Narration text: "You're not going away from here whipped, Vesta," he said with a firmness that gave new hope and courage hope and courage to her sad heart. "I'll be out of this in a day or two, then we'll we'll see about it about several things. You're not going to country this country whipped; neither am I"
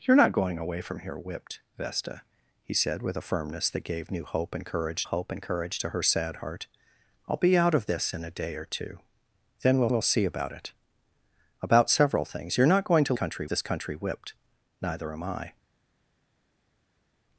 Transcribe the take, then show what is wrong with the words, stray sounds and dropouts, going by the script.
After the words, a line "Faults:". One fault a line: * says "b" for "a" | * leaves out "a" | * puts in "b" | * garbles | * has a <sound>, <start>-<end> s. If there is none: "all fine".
"You're not going away from here whipped, Vesta," he said with a firmness that gave new hope and courage hope and courage to her sad heart. "I'll be out of this in a day or two, then we'll we'll see about it about several things. You're not going to country this country whipped; neither am I"
Faults:
all fine